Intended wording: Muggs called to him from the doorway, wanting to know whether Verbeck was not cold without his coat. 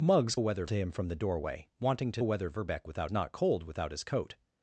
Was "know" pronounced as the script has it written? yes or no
no